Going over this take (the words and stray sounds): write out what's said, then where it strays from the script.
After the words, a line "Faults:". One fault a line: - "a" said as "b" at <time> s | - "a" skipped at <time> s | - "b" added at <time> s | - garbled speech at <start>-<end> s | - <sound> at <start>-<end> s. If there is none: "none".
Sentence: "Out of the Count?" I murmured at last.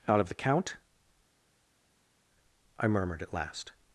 "Out of the Count?" I murmured at last.
Faults:
none